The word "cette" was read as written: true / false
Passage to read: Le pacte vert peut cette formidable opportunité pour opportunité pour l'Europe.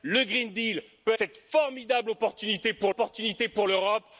true